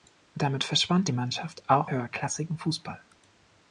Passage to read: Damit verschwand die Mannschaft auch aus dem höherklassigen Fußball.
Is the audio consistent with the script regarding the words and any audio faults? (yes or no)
no